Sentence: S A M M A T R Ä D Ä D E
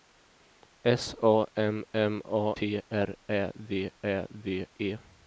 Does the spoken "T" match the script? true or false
true